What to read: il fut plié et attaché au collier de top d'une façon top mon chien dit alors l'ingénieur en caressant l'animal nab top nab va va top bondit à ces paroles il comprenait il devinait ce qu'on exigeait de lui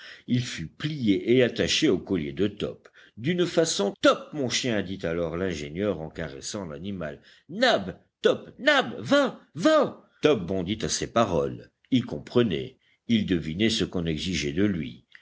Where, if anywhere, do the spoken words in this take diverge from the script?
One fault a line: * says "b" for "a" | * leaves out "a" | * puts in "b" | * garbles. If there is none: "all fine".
all fine